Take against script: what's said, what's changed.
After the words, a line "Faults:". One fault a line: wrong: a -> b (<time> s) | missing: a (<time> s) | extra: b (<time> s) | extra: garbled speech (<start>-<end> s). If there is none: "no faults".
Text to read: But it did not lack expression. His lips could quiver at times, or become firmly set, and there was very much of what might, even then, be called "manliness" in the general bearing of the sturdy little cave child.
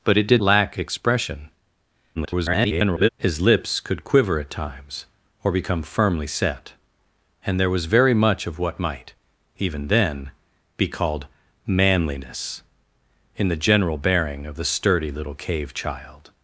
But it did lack expression. [garbled] His lips could quiver at times, or become firmly set, and there was very much of what might, even then, be called "manliness" in the general bearing of the sturdy little cave child.
Faults:
missing: not (0.4 s)
extra: garbled speech (2.2-3.1 s)